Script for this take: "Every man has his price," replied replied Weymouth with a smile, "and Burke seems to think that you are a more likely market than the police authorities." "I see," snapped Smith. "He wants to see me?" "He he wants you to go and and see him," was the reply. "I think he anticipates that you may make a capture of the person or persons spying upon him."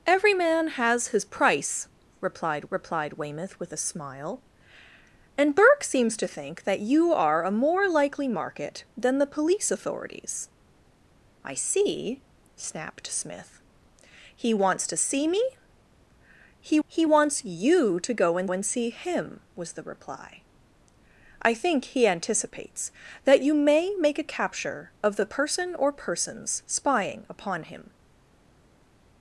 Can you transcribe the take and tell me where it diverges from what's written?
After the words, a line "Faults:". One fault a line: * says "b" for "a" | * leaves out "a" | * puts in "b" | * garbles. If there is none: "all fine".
"Every man has his price," replied replied Weymouth with a smile, "and Burke seems to think that you are a more likely market than the police authorities." "I see," snapped Smith. "He wants to see me?" "He he wants you to go and and see him," was the reply. "I think he anticipates that you may make a capture of the person or persons spying upon him."
Faults:
all fine